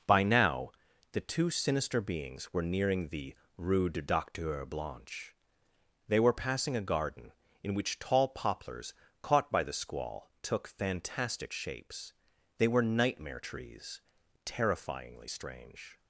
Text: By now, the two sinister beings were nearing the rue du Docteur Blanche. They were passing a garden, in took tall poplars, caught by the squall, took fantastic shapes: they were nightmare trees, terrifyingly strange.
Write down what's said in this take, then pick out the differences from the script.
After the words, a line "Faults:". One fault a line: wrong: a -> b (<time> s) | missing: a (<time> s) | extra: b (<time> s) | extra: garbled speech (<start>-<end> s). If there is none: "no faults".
By now, the two sinister beings were nearing the rue du Docteur Blanche. They were passing a garden, in which tall poplars, caught by the squall, took fantastic shapes: they were nightmare trees, terrifyingly strange.
Faults:
wrong: took -> which (7.7 s)